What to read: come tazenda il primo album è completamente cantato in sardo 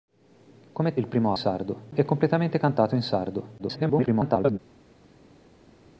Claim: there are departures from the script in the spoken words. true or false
true